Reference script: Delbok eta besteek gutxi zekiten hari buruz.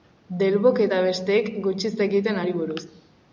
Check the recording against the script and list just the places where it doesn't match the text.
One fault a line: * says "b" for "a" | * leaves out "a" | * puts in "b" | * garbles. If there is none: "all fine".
all fine